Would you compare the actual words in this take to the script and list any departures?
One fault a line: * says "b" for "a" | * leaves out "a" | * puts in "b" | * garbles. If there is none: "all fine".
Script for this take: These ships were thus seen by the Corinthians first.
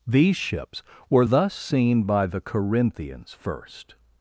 all fine